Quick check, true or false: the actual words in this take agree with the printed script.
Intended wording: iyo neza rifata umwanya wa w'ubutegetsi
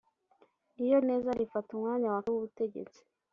true